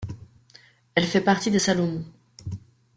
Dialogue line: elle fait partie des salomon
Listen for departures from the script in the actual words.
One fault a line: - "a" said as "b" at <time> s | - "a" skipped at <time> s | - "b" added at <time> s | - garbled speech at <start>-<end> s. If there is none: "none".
none